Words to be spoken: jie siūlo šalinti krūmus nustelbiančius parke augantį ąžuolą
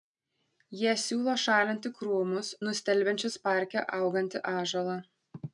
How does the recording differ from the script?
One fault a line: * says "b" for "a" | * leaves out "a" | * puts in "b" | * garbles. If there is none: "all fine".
all fine